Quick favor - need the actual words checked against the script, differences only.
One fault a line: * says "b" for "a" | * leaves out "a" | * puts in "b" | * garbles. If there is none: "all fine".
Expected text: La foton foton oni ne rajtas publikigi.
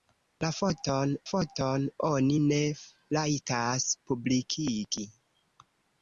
all fine